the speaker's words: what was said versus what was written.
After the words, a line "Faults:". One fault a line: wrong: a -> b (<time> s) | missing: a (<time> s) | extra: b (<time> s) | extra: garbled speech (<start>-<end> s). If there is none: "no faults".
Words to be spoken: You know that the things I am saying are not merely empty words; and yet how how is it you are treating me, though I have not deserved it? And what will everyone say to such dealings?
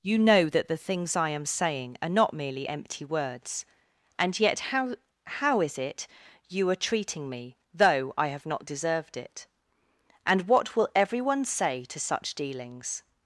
You know that the things I am saying are not merely empty words; and yet how how is it you are treating me, though I have not deserved it? And what will everyone say to such dealings?
Faults:
no faults